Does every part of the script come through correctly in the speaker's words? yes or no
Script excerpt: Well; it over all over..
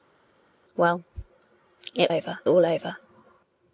yes